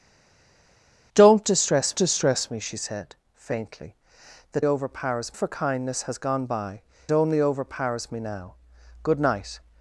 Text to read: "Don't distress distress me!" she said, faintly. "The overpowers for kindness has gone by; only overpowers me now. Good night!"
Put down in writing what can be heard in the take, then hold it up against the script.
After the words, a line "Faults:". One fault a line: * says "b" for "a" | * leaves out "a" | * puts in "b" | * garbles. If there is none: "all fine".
"Don't distress distress me!" she said, faintly. "The overpowers for kindness has gone by; only overpowers me now. Good night!"
Faults:
all fine